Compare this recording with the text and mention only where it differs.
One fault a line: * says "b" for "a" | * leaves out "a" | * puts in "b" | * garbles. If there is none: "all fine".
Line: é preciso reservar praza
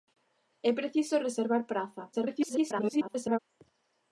* garbles